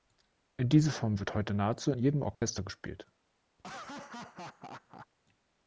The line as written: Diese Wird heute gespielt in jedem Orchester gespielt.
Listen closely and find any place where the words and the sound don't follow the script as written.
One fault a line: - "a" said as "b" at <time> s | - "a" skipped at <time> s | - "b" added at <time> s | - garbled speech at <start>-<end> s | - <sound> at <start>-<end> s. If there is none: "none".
- "Form" added at 0.9 s
- "gespielt" said as "nahezu" at 1.5 s
- dropout at 2.3-2.4 s
- laugh at 3.6-5.1 s